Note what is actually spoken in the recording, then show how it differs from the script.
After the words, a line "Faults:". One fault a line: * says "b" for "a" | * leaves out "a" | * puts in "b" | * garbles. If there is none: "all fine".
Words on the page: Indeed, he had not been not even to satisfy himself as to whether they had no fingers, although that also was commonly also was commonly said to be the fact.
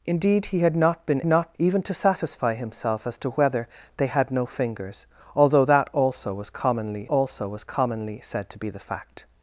Indeed, he had not been not even to satisfy himself as to whether they had no fingers, although that also was commonly also was commonly said to be the fact.
Faults:
all fine